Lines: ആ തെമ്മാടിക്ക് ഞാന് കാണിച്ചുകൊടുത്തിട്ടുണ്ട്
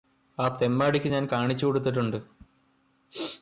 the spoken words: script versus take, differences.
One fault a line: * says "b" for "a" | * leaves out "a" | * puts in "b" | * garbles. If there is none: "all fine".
all fine